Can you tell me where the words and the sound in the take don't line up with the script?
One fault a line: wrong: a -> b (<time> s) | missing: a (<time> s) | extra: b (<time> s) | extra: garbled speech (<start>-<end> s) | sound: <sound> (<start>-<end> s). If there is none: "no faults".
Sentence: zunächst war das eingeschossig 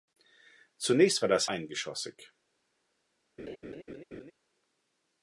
sound: laugh (3.4-4.3 s)